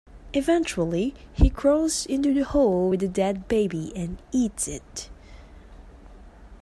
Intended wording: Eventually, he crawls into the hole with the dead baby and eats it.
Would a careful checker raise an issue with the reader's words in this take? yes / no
no